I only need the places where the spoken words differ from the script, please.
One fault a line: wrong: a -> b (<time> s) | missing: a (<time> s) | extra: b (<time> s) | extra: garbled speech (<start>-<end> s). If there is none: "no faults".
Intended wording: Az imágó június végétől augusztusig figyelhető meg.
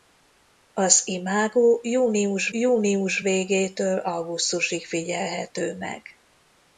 extra: június (2.5 s)